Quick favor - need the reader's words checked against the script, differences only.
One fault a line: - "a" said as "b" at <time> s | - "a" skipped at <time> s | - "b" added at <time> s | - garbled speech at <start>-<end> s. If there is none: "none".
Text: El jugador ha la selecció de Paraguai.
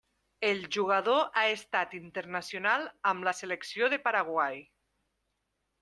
- "estat internacional amb" added at 1.5 s